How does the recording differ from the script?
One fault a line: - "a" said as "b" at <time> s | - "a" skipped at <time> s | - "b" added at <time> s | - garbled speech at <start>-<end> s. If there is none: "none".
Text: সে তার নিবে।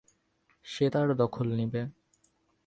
- "দখল" added at 1.1 s